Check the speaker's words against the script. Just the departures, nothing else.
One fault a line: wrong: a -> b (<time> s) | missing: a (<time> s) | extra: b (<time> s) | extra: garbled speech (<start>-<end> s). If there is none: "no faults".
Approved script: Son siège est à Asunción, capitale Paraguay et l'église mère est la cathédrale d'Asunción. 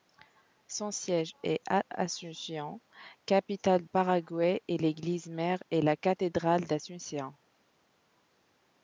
no faults